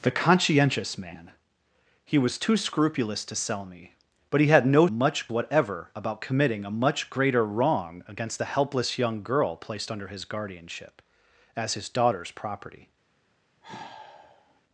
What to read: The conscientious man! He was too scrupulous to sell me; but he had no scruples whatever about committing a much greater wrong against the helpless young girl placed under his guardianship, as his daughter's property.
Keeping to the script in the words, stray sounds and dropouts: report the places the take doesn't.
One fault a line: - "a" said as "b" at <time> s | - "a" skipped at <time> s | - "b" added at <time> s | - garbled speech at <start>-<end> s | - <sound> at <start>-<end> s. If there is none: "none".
- "scruples" said as "much" at 4.9 s
- sigh at 13.6-14.6 s